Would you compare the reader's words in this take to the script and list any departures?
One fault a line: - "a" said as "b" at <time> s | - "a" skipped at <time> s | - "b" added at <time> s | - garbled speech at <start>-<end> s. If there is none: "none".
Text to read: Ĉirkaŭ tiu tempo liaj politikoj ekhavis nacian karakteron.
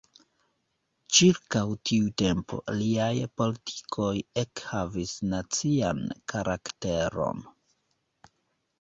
none